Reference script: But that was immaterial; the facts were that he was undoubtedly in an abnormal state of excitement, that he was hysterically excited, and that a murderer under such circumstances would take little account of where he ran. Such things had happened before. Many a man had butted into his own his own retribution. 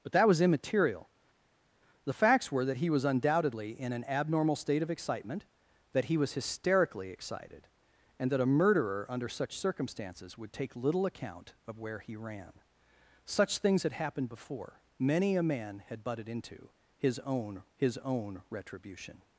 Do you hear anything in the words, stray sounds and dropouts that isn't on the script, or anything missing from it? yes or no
no